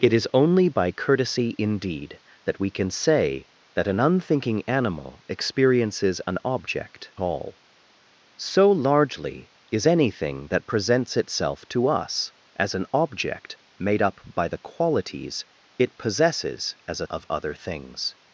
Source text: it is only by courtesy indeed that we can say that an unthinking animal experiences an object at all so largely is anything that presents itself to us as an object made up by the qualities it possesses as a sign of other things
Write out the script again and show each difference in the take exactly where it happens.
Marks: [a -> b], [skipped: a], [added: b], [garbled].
it is only by courtesy indeed that we can say that an unthinking animal experiences an object [skipped: at] all so largely is anything that presents itself to us as an object made up by the qualities it possesses as a [skipped: sign] of other things